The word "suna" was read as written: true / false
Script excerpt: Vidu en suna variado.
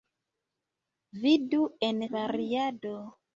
false